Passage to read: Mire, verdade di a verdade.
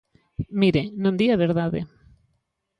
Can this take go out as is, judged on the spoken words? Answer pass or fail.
fail